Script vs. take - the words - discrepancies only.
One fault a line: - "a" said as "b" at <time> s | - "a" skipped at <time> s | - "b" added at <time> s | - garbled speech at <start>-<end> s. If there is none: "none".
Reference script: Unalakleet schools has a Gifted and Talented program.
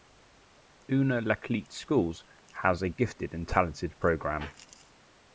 none